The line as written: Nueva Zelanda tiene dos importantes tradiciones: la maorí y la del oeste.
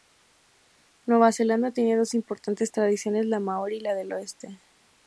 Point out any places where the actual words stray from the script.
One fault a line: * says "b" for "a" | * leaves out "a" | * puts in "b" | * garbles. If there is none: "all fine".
all fine